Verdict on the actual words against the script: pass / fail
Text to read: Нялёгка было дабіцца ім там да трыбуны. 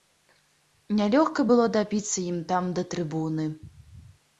pass